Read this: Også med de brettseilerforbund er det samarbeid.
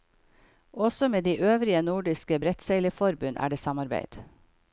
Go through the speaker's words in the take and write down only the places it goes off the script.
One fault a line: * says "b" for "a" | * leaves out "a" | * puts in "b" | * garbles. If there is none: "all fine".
* puts in "øvrige nordiske"